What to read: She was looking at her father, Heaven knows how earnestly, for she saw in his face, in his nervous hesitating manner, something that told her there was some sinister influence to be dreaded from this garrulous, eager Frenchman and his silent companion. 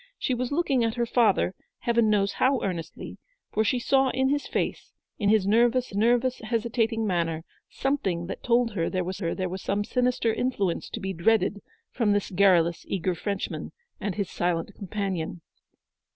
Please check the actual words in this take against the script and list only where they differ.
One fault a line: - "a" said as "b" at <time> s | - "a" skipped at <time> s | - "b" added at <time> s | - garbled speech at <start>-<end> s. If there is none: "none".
- "nervous" added at 5.9 s
- "her there was" added at 9.2 s